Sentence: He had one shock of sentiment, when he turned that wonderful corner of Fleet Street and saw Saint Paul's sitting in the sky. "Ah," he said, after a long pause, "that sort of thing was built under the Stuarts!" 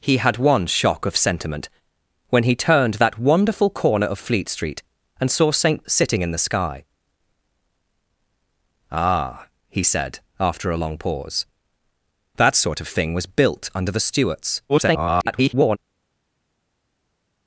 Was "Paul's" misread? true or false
true